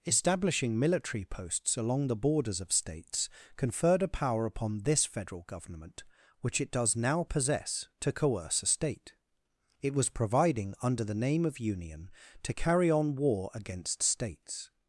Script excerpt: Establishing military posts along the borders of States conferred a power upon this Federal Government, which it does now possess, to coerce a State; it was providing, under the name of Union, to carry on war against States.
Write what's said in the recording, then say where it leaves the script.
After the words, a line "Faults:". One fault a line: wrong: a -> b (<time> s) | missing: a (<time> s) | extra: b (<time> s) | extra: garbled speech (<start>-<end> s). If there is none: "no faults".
Establishing military posts along the borders of States conferred a power upon this Federal Government, which it does now possess, to coerce a State; it was providing, under the name of Union, to carry on war against States.
Faults:
no faults